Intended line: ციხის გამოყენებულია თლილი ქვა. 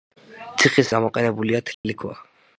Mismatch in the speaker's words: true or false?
false